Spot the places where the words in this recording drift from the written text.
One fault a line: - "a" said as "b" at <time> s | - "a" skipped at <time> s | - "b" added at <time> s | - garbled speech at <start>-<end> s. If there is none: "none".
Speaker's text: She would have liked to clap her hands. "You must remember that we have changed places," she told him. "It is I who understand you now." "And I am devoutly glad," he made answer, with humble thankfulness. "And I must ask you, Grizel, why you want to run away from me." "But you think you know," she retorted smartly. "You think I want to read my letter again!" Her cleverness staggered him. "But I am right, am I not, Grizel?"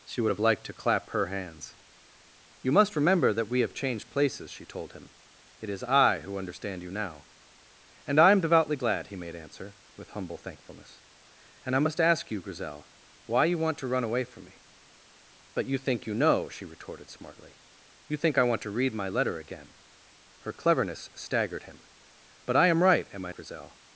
- "not" skipped at 23.3 s